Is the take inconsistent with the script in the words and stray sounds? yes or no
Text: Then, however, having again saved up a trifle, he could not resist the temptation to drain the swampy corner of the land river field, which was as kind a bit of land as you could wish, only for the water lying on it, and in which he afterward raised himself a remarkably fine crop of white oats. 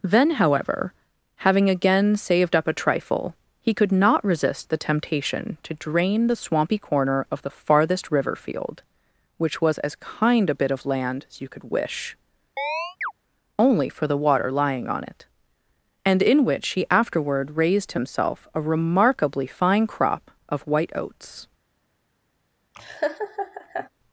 yes